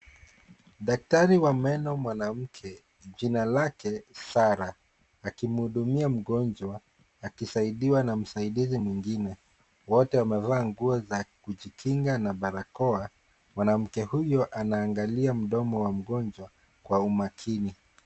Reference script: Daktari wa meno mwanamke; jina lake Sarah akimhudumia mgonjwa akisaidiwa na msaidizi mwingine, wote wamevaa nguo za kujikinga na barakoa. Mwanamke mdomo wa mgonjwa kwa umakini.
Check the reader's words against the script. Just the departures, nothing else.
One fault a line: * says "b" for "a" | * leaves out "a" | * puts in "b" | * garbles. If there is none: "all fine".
* puts in "huyo anaangalia"